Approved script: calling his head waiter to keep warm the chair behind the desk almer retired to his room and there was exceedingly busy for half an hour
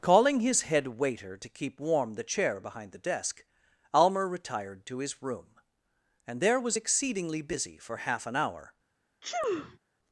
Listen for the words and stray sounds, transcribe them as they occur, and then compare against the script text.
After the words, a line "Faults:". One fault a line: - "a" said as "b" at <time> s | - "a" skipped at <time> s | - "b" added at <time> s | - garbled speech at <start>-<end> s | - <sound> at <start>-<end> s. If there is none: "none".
calling his head waiter to keep warm the chair behind the desk almer retired to his room and there was exceedingly busy for half an hour
Faults:
- sneeze at 9.2-9.8 s